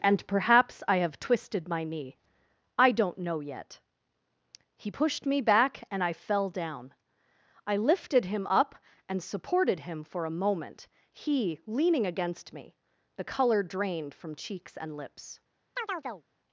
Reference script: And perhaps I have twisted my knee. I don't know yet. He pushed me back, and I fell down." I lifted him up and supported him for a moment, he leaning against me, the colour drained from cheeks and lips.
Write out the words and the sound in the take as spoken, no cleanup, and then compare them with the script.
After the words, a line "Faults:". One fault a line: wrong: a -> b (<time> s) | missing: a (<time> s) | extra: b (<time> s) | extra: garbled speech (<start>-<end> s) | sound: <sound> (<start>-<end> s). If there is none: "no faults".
And perhaps I have twisted my knee. I don't know yet. He pushed me back, and I fell down." I lifted him up and supported him for a moment, he leaning against me, the colour drained from cheeks and lips.
Faults:
sound: chirp (15.8-16.2 s)